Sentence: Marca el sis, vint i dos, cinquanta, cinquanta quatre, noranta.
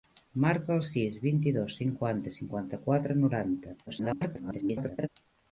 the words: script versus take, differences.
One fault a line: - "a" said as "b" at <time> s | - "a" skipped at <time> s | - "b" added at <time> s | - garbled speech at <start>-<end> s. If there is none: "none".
- garbled speech at 3.9-5.1 s